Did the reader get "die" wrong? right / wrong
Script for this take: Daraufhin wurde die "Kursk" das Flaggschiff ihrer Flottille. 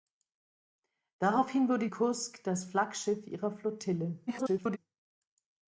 wrong